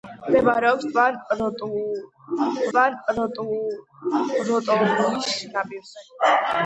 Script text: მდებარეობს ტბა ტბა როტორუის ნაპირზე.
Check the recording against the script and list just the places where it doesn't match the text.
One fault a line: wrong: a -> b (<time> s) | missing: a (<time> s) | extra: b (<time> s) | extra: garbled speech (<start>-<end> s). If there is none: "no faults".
no faults